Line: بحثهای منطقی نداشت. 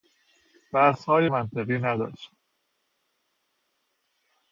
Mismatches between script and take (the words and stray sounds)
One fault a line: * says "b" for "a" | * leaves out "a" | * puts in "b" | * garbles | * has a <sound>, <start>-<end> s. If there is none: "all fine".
all fine